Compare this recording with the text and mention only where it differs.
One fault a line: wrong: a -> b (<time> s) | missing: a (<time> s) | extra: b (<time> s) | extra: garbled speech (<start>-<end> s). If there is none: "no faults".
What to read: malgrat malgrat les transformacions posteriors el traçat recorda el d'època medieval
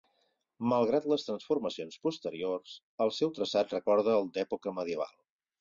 missing: malgrat (1.1 s)
extra: seu (3.2 s)